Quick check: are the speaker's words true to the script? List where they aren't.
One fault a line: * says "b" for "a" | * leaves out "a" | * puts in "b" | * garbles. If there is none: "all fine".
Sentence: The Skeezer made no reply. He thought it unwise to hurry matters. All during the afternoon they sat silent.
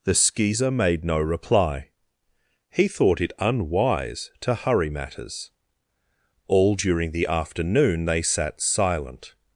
all fine